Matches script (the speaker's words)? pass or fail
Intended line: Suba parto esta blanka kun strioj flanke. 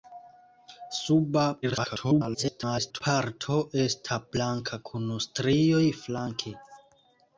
fail